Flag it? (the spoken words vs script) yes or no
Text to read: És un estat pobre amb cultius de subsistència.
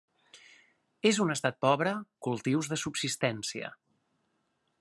yes